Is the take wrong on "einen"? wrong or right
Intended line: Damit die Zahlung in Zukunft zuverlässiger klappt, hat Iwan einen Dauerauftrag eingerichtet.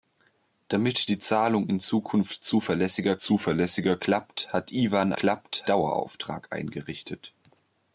wrong